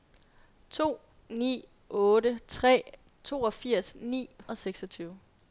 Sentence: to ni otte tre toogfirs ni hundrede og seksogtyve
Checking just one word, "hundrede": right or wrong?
wrong